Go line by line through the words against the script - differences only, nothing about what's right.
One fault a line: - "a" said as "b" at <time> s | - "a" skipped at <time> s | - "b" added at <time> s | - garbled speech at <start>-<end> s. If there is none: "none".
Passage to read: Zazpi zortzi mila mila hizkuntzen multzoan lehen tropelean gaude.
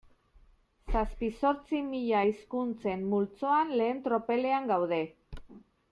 - "mila" skipped at 2.2 s